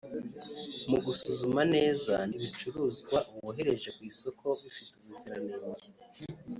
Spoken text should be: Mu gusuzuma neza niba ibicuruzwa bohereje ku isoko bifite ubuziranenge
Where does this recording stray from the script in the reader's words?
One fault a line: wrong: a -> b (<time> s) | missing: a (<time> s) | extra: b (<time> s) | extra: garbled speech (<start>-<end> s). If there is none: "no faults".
missing: niba (2.1 s)